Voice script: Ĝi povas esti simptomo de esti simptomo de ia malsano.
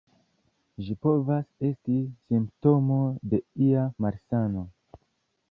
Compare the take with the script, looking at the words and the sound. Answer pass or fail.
fail